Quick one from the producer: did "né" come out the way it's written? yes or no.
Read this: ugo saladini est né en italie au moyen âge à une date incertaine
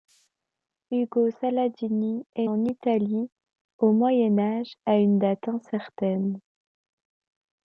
no